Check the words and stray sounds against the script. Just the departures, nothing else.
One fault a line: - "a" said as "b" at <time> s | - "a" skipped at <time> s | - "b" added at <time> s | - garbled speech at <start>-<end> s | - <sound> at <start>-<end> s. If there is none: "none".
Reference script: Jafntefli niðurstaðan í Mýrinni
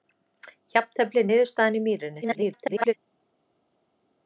- garbled speech at 2.2-2.9 s